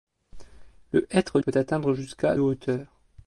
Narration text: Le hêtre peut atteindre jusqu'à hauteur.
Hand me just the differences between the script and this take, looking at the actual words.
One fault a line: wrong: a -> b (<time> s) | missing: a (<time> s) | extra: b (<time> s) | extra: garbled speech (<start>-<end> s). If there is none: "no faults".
no faults